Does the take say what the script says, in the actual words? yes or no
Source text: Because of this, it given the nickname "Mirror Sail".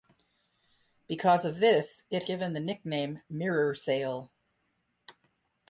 yes